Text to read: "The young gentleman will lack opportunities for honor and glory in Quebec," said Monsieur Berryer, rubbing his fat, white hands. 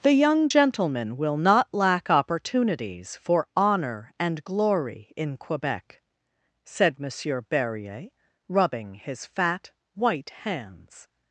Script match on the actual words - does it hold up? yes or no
no